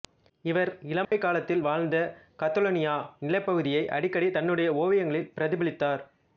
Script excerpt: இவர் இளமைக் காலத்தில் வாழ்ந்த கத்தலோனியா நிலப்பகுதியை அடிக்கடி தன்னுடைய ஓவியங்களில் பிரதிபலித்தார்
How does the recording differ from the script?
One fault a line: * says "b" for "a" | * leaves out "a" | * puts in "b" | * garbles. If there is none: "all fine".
all fine